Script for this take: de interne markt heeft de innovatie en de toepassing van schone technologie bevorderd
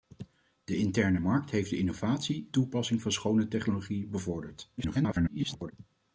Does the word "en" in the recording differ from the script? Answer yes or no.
yes